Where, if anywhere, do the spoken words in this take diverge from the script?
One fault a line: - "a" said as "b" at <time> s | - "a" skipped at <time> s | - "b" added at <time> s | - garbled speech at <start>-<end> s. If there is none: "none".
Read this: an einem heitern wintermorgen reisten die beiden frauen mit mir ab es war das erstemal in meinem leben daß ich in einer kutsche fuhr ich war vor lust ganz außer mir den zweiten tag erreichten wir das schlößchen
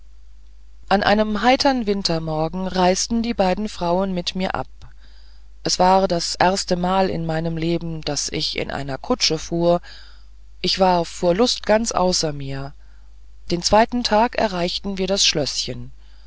none